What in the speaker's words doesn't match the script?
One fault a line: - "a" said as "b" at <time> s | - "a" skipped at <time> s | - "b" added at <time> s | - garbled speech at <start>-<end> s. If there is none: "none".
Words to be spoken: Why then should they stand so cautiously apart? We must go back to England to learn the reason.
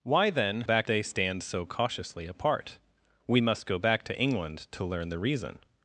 - "should" said as "back" at 0.6 s